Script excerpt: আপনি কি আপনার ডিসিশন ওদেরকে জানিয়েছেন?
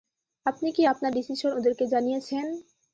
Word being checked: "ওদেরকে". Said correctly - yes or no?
yes